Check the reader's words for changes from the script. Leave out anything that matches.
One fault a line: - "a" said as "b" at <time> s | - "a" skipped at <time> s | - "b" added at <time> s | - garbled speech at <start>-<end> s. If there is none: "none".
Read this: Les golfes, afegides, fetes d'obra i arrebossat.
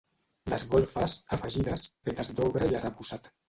none